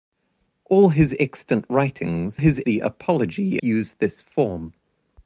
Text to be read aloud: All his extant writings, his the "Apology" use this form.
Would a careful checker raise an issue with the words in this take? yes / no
no